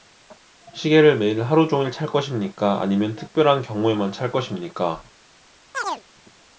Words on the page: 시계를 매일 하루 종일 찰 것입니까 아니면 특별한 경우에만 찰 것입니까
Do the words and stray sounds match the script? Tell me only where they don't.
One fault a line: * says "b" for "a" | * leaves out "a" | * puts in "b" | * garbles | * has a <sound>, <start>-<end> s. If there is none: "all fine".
* has a chirp, 5.7-6.0 s